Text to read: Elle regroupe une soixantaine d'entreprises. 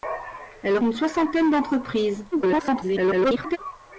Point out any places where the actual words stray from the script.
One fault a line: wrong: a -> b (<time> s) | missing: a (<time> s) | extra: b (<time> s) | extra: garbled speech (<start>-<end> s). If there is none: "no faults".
missing: regroupe (0.8 s)
extra: garbled speech (2.3-3.6 s)